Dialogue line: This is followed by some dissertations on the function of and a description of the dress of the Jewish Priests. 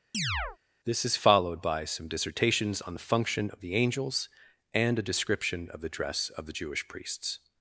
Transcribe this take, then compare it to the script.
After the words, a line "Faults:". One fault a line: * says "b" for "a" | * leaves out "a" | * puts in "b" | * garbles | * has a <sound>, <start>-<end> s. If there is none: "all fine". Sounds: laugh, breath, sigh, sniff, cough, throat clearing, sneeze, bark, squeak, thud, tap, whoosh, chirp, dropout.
This is followed by some dissertations on the function of the angels, and a description of the dress of the Jewish Priests.
Faults:
* has a chirp, 0.1-0.6 s
* puts in "the angels"